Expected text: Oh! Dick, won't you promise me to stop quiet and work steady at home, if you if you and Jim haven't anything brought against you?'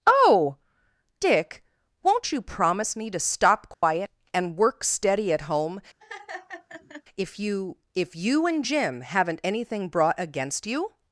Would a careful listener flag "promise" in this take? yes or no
no